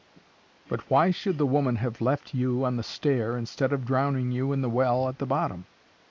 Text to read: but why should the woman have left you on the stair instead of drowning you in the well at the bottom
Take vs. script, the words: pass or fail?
pass